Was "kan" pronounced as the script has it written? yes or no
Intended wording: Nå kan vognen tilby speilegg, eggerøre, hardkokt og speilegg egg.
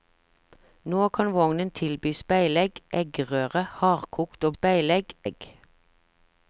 yes